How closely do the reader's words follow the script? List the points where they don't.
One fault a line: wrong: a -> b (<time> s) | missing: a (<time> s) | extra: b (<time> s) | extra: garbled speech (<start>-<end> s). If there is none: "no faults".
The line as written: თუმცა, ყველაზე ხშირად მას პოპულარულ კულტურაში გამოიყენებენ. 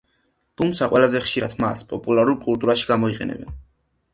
no faults